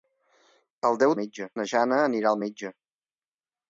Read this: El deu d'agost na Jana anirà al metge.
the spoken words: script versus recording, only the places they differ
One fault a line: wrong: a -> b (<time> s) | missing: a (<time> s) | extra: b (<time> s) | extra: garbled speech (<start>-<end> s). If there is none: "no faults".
wrong: d'agost -> metge (1.2 s)